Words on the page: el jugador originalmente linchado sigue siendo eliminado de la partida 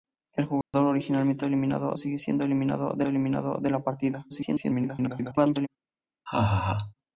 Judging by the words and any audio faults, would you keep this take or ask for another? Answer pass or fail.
fail